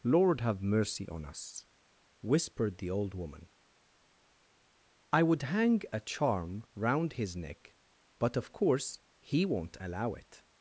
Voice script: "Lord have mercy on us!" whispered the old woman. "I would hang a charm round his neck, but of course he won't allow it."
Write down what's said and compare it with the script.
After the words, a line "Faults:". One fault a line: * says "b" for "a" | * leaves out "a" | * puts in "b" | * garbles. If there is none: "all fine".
"Lord have mercy on us!" whispered the old woman. "I would hang a charm round his neck, but of course he won't allow it."
Faults:
all fine